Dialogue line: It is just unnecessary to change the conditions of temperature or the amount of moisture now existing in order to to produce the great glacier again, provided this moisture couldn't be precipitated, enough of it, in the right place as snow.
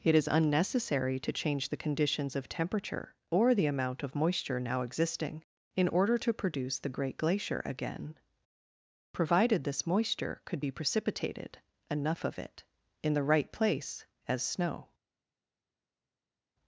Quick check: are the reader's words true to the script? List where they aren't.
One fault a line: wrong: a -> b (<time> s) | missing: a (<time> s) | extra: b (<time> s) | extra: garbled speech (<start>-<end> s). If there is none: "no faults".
missing: just (0.3 s)
missing: to (6.3 s)
wrong: couldn't -> could (10.4 s)